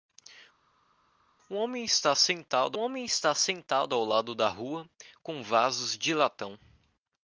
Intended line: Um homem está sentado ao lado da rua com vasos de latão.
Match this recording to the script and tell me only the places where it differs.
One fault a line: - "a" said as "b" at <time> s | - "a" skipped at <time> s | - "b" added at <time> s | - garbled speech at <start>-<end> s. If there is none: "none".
- "homem está sentado" added at 2.8 s